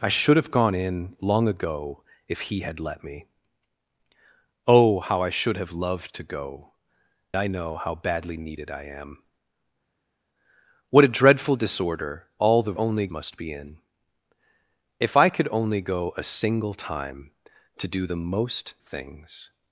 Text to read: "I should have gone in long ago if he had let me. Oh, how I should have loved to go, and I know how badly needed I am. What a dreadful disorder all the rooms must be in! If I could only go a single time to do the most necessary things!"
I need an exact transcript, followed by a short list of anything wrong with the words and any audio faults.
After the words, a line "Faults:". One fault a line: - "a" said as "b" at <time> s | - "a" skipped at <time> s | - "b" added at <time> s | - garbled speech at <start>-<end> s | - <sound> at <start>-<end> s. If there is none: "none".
"I should have gone in long ago if he had let me. Oh, how I should have loved to go, I know how badly needed I am. What a dreadful disorder all the only must be in! If I could only go a single time to do the most things!"
Faults:
- "and" skipped at 6.7 s
- "rooms" said as "only" at 12.7 s
- "necessary" skipped at 18.8 s